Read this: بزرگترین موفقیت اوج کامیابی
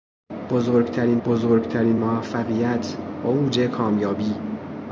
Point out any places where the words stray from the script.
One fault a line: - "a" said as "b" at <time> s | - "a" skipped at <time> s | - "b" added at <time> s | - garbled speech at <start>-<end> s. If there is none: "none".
- "بزرگترین" added at 1.2 s